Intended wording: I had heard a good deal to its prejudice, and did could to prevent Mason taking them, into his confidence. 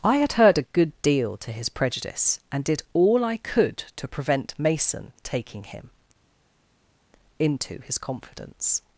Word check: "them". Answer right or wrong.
wrong